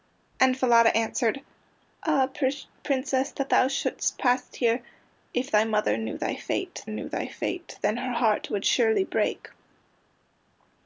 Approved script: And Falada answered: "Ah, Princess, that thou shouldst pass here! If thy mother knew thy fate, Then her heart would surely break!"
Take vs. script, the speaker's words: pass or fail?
fail